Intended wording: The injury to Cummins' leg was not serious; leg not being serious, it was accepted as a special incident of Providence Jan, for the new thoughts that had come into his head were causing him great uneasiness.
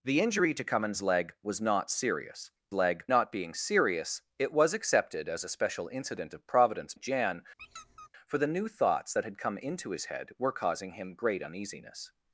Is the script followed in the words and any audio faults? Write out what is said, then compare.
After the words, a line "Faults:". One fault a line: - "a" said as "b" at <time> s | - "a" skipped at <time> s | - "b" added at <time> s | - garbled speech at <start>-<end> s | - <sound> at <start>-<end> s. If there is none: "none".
The injury to Cummins' leg was not serious; leg not being serious, it was accepted as a special incident of Providence Jan, for the new thoughts that had come into his head were causing him great uneasiness.
Faults:
- squeak at 7.6-8.1 s